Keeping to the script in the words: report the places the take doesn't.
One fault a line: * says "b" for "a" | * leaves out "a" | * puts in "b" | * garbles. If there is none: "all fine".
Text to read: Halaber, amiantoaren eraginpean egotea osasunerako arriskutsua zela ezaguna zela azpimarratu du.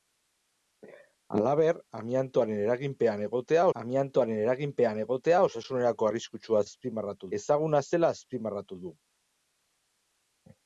* puts in "amiantoaren eraginpean egotea"
* says "azpimarratu" for "zela"